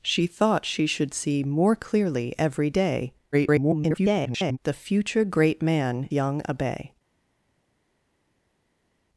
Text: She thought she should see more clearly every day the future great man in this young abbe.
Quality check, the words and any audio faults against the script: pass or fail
fail